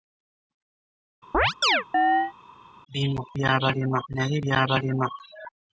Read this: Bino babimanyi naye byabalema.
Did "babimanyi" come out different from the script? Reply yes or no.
yes